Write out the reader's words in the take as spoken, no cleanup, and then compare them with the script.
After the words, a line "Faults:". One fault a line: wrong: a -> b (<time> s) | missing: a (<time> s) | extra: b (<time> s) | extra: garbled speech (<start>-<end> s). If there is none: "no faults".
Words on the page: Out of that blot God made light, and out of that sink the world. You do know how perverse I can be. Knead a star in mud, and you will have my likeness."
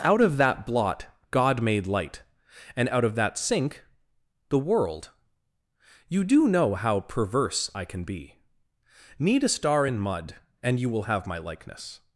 Out of that blot God made light, and out of that sink the world. You do know how perverse I can be. Knead a star in mud, and you will have my likeness."
Faults:
no faults